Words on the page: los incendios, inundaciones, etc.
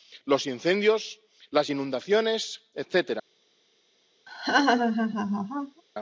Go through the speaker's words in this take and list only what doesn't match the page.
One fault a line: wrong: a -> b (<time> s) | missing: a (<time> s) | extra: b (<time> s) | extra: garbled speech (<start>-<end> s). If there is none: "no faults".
extra: las (1.5 s)